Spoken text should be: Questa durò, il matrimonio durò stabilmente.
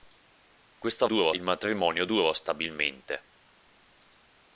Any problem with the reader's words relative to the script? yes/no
no